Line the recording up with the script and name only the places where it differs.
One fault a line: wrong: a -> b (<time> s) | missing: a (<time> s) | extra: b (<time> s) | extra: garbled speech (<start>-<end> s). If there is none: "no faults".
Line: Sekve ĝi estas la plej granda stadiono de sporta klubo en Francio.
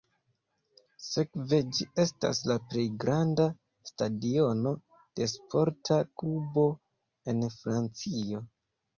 no faults